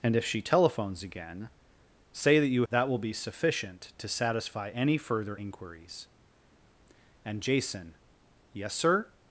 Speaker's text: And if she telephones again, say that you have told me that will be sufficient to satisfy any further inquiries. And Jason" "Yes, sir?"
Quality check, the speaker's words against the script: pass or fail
fail